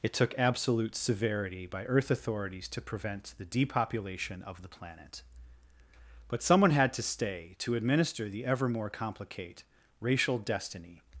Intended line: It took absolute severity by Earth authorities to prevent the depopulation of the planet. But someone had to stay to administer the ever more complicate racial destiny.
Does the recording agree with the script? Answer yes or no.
yes